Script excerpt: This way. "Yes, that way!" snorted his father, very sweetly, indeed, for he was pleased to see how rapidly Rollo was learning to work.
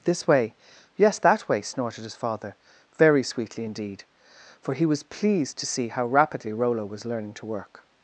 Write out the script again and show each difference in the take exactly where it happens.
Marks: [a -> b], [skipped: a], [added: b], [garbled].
This way. "Yes, that way!" snorted his father, very sweetly, indeed, for he was pleased to see how rapidly Rollo was learning to work.